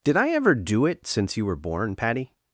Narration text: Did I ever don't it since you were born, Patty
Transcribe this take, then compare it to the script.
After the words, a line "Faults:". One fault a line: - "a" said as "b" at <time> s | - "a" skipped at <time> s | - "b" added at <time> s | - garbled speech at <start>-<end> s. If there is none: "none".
Did I ever do it since you were born, Patty
Faults:
- "don't" said as "do" at 0.6 s